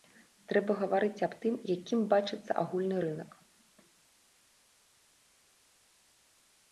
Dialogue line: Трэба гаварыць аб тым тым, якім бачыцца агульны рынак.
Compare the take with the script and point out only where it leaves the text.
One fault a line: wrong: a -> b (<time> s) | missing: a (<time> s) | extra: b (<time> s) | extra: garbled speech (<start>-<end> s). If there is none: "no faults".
missing: тым (1.5 s)